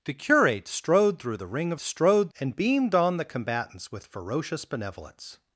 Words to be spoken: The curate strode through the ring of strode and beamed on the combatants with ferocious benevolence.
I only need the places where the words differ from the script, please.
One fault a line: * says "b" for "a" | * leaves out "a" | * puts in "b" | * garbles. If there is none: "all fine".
all fine